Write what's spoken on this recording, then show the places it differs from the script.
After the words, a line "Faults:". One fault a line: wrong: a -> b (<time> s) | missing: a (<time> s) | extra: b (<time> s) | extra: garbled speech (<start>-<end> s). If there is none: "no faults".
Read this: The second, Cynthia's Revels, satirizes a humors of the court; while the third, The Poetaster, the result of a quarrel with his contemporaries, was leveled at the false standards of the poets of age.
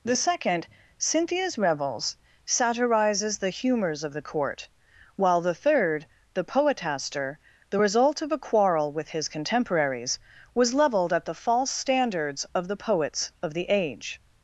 The second, Cynthia's Revels, satirizes the humors of the court; while the third, The Poetaster, the result of a quarrel with his contemporaries, was leveled at the false standards of the poets of the age.
Faults:
wrong: a -> the (3.4 s)
extra: the (13.5 s)